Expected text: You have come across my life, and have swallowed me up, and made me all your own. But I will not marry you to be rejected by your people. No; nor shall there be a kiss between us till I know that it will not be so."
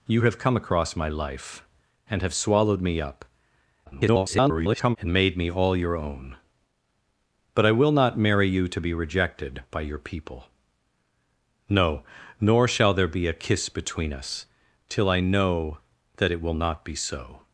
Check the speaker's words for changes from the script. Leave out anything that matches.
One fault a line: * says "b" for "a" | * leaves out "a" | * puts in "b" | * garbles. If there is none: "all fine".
* garbles